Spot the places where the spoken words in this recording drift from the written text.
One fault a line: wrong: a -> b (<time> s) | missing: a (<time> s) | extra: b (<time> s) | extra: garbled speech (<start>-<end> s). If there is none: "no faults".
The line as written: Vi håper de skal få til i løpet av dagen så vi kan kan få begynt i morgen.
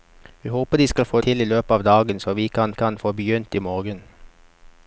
no faults